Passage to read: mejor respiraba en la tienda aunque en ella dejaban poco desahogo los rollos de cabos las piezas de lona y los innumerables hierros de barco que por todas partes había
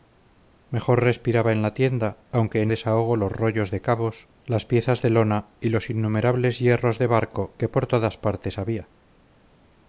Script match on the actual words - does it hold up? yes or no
no